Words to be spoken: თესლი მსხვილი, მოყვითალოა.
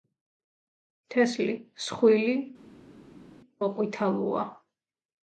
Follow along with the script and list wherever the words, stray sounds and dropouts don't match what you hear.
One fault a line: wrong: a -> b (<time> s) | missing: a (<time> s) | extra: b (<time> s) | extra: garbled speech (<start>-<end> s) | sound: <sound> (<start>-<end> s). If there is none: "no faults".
no faults